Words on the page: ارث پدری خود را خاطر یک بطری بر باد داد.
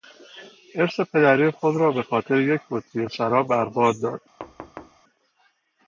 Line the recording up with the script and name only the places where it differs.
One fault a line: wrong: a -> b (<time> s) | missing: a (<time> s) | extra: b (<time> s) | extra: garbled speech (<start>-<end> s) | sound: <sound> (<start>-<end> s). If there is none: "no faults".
extra: به (1.9 s)
extra: شراب (3.1 s)
sound: thud (4.4-5.0 s)